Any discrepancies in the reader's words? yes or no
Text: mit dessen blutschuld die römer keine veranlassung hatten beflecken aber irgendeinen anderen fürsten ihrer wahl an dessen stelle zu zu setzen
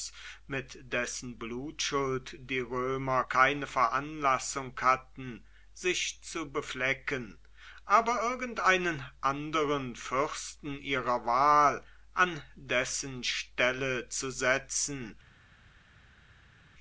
yes